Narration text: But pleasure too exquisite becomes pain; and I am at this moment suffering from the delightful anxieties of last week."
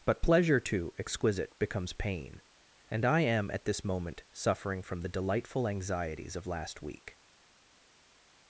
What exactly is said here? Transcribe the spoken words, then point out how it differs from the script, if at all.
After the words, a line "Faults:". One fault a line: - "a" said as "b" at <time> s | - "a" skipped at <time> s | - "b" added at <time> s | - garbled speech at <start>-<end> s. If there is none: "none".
But pleasure too exquisite becomes pain; and I am at this moment suffering from the delightful anxieties of last week."
Faults:
none